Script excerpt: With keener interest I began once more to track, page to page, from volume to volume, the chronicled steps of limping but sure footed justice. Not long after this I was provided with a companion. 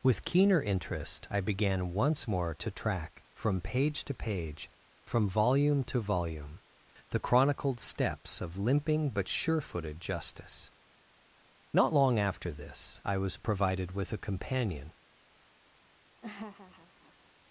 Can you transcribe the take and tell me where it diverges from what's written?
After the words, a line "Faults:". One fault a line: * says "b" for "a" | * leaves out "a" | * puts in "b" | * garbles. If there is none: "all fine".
With keener interest I began once more to track, from page to page, from volume to volume, the chronicled steps of limping but sure footed justice. Not long after this I was provided with a companion.
Faults:
* puts in "from"